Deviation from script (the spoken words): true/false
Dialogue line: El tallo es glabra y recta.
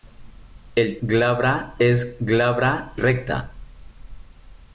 true